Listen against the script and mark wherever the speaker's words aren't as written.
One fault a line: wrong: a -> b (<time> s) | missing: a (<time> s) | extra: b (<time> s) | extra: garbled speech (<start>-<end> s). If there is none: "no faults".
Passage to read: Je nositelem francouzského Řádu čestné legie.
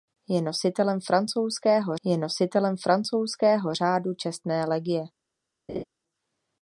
extra: je nositelem francouzského (2.0 s)